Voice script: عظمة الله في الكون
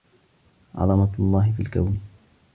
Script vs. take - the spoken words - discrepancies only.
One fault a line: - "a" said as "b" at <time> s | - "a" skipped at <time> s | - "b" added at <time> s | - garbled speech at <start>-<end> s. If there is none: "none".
none